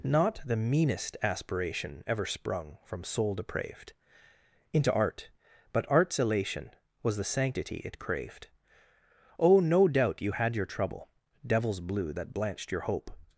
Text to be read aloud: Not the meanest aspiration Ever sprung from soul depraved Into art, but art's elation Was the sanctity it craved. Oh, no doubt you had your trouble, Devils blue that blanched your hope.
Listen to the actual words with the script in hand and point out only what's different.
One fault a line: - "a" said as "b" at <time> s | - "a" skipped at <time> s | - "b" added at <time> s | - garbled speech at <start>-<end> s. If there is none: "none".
none